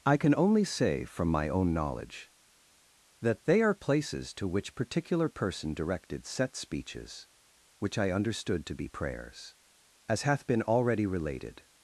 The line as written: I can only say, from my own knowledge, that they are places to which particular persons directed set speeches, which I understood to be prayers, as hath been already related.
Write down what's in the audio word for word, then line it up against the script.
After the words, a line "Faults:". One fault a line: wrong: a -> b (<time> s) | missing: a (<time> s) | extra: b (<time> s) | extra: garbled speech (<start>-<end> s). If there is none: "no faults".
I can only say, from my own knowledge, that they are places to which particular person directed set speeches, which I understood to be prayers, as hath been already related.
Faults:
wrong: persons -> person (5.3 s)